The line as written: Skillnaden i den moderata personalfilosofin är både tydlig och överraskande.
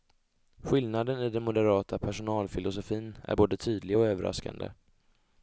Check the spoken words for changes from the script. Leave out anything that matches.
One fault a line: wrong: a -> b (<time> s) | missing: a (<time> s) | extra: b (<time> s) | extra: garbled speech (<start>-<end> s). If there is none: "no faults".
no faults